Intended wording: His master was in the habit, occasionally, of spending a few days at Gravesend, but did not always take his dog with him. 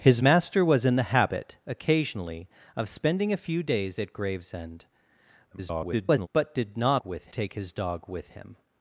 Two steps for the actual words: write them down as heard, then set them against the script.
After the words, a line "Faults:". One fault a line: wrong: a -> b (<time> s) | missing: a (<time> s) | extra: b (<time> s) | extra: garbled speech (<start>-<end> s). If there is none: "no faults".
His master was in the habit, occasionally, of spending a few days at Gravesend, [garbled] but did not with take his dog with him.
Faults:
extra: garbled speech (5.5-6.3 s)
wrong: always -> with (7.0 s)